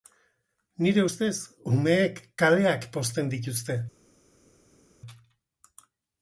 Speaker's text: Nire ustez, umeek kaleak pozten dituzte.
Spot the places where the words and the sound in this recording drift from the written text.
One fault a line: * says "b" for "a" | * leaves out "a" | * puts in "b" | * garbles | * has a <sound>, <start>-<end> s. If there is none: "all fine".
all fine